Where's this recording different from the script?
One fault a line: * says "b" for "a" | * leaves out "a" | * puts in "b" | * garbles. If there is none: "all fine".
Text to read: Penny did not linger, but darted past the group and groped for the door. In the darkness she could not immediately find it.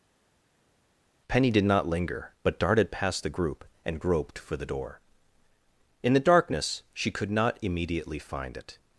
all fine